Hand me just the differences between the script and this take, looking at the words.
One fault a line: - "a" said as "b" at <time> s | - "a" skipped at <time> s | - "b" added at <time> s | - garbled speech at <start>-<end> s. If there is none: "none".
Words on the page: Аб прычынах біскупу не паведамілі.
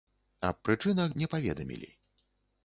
- "біскупу" skipped at 1.1 s